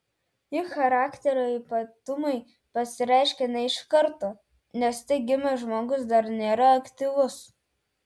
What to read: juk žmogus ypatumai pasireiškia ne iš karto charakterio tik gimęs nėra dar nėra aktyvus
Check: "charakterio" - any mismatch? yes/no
yes